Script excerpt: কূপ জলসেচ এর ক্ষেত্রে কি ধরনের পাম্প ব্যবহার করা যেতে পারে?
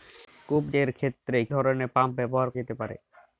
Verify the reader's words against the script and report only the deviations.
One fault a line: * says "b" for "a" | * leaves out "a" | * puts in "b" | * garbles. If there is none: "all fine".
* leaves out "জলসেচ"
* leaves out "কি"
* leaves out "করা"